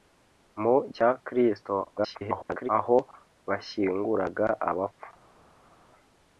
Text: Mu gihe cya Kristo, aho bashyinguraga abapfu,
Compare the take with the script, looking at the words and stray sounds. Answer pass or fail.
fail